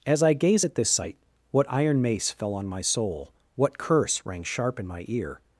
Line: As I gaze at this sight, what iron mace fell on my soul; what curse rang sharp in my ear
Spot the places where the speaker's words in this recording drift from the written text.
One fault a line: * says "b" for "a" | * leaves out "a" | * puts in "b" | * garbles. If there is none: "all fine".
all fine